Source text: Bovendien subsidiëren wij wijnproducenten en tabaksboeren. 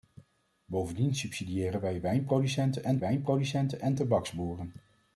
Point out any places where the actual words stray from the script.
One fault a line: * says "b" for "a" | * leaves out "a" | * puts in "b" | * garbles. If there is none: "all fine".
* puts in "wijnproducenten en"